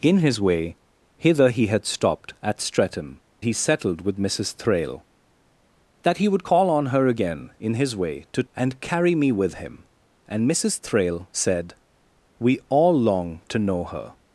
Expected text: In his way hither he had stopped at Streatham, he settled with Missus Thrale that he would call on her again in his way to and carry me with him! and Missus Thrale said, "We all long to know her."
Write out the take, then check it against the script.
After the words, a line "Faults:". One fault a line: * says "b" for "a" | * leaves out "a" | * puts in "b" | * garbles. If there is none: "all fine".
In his way hither he had stopped at Streatham, he settled with Missus Thrale that he would call on her again in his way to and carry me with him! and Missus Thrale said, "We all long to know her."
Faults:
all fine